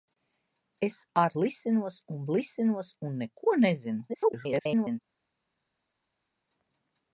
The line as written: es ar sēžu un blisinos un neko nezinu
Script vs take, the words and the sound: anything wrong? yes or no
yes